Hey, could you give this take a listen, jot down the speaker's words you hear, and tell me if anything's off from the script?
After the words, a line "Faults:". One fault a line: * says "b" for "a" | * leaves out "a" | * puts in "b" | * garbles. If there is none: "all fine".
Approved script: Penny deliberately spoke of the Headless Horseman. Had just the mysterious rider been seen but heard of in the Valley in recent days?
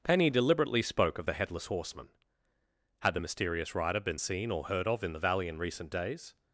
Penny deliberately spoke of the Headless Horseman. Had the mysterious rider been seen or heard of in the Valley in recent days?
Faults:
* leaves out "just"
* says "or" for "but"